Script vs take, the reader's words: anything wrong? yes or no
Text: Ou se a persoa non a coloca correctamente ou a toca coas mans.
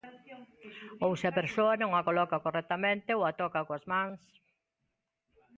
no